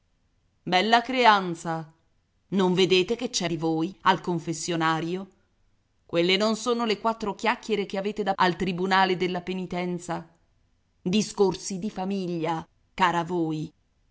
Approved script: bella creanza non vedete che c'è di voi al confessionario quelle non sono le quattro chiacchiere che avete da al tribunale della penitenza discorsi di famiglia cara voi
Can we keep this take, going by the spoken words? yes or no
yes